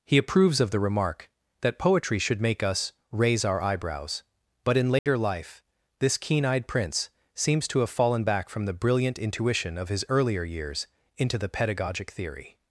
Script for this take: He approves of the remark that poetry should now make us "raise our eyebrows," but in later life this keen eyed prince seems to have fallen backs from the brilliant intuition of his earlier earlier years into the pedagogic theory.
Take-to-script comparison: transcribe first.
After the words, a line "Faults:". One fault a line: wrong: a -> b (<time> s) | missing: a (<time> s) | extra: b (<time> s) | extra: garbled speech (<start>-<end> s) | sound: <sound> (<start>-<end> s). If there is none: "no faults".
He approves of the remark that poetry should make us "raise our eyebrows," but in later life this keen eyed prince seems to have fallen back from the brilliant intuition of his earlier years into the pedagogic theory.
Faults:
missing: now (2.4 s)
sound: dropout (5.0-5.1 s)
wrong: backs -> back (8.2 s)
missing: earlier (10.4 s)